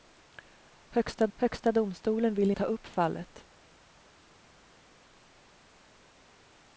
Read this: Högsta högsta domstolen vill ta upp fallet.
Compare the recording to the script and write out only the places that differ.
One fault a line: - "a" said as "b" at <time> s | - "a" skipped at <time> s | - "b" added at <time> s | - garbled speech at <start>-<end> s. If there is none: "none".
none